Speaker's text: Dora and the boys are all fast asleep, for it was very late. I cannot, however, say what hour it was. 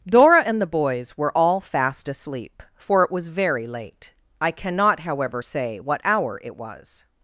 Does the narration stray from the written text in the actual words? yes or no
yes